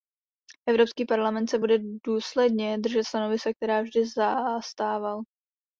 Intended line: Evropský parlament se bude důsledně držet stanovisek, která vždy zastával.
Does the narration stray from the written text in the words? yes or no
no